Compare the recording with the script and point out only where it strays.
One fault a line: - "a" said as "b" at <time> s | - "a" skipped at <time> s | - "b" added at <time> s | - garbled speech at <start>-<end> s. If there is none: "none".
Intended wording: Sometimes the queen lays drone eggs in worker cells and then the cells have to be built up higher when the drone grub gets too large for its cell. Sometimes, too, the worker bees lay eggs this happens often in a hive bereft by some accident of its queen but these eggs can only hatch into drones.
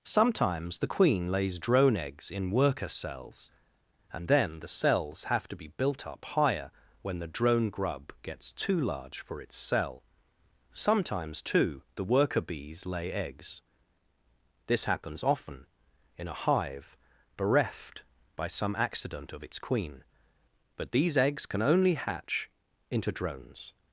none